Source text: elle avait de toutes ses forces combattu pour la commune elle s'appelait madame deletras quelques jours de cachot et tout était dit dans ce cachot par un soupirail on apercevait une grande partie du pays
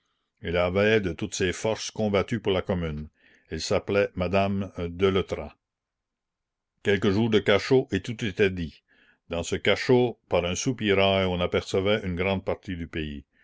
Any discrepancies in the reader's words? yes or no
no